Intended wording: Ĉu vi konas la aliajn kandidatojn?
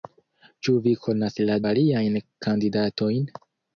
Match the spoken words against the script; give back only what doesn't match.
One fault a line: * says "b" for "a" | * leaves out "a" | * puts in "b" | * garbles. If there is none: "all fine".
all fine